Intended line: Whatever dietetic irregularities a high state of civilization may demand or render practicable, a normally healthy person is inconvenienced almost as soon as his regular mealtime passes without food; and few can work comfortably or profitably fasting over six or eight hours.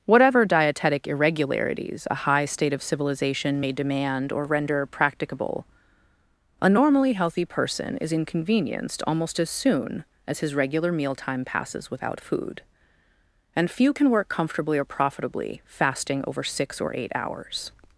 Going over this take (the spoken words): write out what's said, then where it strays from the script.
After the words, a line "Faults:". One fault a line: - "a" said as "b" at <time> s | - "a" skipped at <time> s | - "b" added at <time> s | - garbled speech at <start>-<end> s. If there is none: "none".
Whatever dietetic irregularities a high state of civilization may demand or render practicable, a normally healthy person is inconvenienced almost as soon as his regular mealtime passes without food; and few can work comfortably or profitably fasting over six or eight hours.
Faults:
none